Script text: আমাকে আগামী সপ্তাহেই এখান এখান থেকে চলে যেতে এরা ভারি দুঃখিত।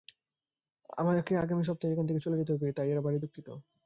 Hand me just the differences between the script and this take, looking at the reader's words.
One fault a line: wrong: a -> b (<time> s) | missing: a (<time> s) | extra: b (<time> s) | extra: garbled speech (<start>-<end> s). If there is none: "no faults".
missing: এখান (2.0 s)
extra: হবে তাই (2.5 s)